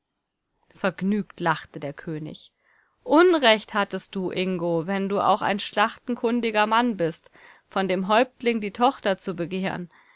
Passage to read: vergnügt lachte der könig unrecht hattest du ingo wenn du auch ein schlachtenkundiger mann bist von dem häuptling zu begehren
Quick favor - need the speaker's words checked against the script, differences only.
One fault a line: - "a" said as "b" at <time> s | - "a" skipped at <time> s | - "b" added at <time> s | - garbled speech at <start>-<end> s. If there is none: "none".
- "die tochter" added at 8.6 s